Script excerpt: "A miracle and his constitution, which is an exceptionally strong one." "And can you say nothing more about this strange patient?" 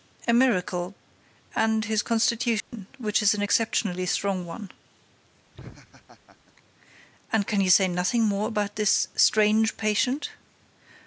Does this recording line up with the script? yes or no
yes